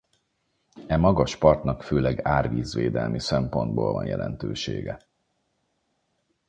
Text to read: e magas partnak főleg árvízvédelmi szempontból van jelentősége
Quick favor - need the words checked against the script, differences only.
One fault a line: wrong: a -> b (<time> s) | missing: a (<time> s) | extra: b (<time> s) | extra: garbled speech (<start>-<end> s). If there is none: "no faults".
no faults